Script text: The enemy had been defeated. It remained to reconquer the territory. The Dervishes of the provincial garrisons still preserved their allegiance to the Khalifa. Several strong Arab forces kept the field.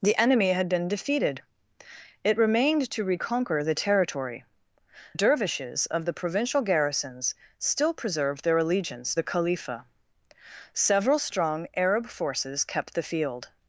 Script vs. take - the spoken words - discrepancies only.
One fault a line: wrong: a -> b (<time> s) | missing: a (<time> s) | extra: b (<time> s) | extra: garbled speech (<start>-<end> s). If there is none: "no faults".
missing: The (4.4 s)
missing: to (9.2 s)